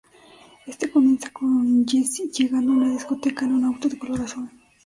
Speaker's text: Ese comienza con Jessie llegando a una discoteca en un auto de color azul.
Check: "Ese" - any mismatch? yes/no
yes